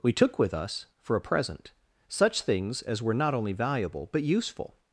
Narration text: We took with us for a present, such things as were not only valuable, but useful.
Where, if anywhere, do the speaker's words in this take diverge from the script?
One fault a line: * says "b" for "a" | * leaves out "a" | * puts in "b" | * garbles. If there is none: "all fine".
all fine